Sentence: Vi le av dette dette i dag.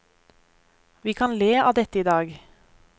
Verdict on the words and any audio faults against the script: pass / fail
fail